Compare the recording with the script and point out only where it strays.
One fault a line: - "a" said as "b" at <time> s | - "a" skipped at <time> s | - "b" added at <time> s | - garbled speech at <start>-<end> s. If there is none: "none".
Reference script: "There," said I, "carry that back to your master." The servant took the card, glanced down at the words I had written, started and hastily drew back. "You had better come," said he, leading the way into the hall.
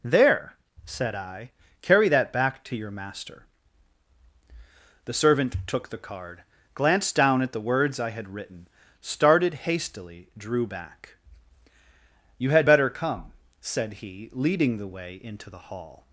- "and" skipped at 9.5 s